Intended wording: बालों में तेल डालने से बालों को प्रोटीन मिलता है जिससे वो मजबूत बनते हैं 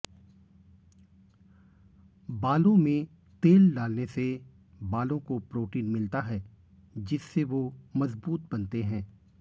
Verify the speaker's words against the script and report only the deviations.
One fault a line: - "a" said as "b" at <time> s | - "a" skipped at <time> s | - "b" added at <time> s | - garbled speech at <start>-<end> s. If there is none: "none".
none